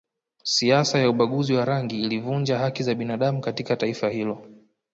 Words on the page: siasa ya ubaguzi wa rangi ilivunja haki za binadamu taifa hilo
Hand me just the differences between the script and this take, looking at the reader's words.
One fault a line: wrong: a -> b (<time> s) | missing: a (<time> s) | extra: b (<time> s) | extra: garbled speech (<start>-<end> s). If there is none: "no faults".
extra: katika (3.4 s)